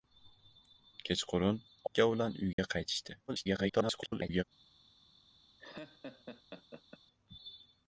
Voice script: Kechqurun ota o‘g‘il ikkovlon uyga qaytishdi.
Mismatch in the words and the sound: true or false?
true